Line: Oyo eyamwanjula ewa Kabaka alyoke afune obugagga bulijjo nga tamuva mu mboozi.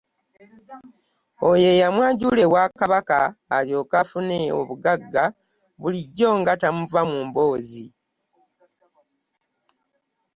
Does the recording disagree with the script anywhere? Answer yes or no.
no